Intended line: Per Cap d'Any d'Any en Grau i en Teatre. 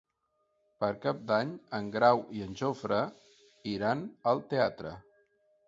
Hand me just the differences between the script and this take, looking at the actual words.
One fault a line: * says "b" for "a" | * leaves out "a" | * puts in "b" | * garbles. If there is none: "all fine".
* leaves out "d'Any"
* puts in "Jofre iran al"